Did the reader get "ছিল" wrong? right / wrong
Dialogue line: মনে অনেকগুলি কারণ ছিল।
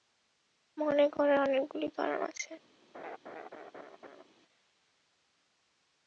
wrong